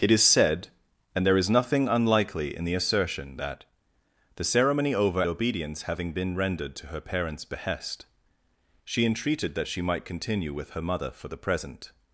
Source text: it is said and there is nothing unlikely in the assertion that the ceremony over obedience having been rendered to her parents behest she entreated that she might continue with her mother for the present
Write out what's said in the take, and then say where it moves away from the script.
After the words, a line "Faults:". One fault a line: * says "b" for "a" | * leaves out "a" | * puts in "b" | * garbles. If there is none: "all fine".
it is said and there is nothing unlikely in the assertion that the ceremony over obedience having been rendered to her parents behest she entreated that she might continue with her mother for the present
Faults:
all fine